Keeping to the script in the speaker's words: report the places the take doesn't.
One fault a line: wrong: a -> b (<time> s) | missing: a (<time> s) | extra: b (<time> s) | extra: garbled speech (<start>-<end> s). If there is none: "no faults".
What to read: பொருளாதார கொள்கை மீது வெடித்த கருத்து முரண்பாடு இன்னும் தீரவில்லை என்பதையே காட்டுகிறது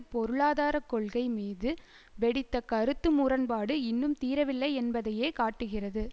no faults